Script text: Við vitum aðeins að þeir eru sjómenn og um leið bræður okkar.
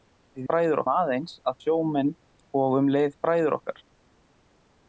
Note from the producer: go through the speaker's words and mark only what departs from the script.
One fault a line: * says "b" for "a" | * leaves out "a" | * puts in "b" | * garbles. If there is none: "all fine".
* says "bræður" for "vitum"
* leaves out "þeir eru"